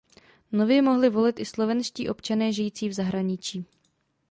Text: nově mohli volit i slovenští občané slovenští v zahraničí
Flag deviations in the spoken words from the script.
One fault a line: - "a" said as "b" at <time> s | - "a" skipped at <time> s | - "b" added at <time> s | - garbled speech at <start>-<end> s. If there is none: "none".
- "slovenští" said as "žijící" at 2.5 s